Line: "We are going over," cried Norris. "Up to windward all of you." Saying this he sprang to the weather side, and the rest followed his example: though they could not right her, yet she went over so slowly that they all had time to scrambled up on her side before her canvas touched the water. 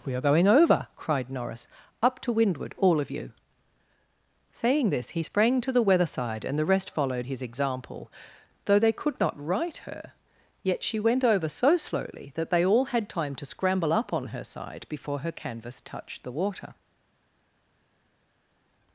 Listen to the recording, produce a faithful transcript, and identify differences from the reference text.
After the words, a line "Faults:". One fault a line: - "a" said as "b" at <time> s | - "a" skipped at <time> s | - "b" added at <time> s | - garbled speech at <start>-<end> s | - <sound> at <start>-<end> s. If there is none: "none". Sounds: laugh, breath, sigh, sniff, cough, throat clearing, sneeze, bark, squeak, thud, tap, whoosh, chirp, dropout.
"We are going over," cried Norris. "Up to windward all of you." Saying this he sprang to the weather side, and the rest followed his example: though they could not right her, yet she went over so slowly that they all had time to scramble up on her side before her canvas touched the water.
Faults:
- "scrambled" said as "scramble" at 13.5 s